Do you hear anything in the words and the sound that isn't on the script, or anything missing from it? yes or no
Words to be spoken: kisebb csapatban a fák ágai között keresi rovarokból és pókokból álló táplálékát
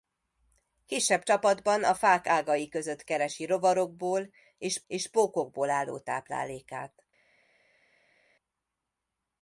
yes